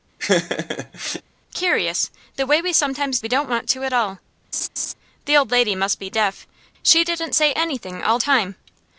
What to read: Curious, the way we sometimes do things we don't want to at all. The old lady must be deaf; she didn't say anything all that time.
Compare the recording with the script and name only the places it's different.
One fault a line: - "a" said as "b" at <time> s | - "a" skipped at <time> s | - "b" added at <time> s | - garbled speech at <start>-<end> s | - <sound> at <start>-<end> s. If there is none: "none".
- laugh at 0.2-1.2 s
- "do things" skipped at 3.2 s
- laugh at 4.5-4.9 s
- "that" skipped at 8.2 s